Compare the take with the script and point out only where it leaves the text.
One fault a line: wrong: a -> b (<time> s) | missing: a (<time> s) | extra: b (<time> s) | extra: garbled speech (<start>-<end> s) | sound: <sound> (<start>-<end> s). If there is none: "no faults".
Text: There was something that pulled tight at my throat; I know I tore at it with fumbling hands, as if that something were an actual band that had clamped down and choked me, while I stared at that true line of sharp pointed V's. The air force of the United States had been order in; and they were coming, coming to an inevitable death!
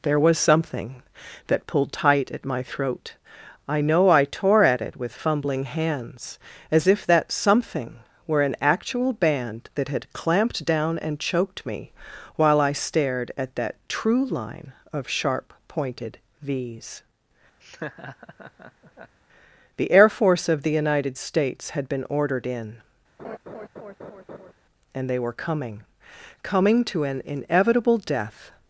sound: laugh (17.6-19.2 s)
wrong: order -> ordered (22.1 s)
sound: laugh (23.2-24.5 s)